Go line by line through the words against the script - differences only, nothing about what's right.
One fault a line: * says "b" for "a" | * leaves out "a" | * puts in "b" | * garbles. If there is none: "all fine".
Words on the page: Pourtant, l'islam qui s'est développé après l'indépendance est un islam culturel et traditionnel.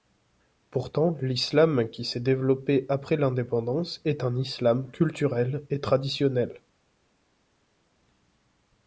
all fine